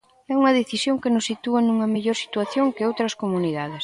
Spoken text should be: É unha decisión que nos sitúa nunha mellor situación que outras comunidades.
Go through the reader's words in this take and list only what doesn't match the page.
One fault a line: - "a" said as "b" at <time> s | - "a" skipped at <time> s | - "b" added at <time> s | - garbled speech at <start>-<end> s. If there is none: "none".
none